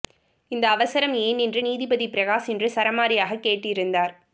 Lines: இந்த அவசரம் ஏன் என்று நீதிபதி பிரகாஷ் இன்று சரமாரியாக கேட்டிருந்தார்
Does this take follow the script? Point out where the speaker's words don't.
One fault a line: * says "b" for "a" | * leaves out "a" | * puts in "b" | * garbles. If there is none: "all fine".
all fine